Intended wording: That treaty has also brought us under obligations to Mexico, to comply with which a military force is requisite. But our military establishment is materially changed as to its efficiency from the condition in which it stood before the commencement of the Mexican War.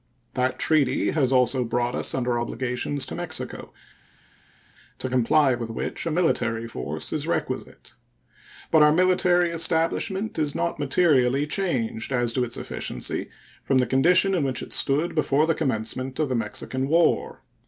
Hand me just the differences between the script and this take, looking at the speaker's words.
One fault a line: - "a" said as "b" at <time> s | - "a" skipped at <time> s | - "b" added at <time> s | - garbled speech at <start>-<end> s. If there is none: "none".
- "not" added at 10.5 s